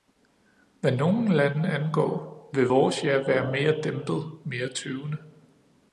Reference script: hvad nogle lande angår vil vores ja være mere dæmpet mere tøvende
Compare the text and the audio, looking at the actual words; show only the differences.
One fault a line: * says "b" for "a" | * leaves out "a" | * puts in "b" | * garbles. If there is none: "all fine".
all fine